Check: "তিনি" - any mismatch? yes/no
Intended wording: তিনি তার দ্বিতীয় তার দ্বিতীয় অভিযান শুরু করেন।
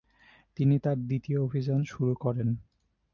no